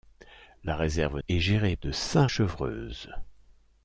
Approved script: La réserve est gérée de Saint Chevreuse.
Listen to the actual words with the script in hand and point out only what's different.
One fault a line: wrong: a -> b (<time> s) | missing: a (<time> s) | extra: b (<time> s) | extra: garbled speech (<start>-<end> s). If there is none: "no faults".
no faults